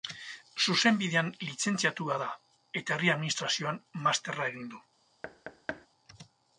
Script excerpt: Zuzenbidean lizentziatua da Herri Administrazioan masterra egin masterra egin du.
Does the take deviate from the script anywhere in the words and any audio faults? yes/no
yes